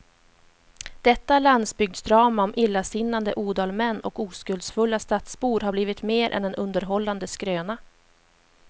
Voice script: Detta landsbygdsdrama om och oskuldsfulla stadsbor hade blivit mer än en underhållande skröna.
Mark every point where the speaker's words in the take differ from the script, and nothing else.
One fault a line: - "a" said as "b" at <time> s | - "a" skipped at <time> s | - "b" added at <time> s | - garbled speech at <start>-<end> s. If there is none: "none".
- "illasinnade odalmän" added at 2.5 s
- "hade" said as "har" at 5.6 s